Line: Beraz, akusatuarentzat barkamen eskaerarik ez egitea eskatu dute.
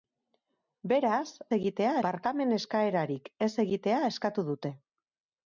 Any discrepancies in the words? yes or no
yes